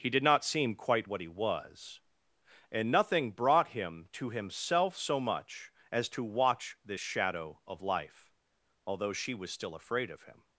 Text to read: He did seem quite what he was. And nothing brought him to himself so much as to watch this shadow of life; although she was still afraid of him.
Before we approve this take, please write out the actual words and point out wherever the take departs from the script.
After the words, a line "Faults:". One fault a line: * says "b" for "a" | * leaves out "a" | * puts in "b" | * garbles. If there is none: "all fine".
He did not seem quite what he was. And nothing brought him to himself so much as to watch this shadow of life; although she was still afraid of him.
Faults:
* puts in "not"